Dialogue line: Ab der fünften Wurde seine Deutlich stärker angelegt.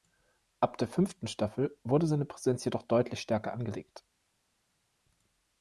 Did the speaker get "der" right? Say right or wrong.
right